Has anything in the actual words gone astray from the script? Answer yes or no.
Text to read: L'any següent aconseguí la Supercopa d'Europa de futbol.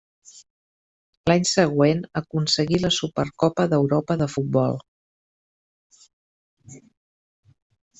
no